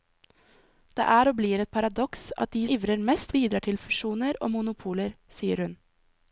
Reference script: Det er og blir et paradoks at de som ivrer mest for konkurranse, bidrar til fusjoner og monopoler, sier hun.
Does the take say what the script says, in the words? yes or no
no